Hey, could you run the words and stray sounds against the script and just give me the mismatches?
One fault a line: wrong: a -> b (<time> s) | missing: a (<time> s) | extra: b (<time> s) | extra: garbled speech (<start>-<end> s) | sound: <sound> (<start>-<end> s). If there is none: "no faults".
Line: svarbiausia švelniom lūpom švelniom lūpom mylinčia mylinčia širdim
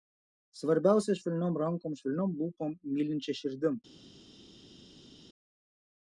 wrong: lūpom -> rankom (1.6 s)
missing: mylinčia (3.4 s)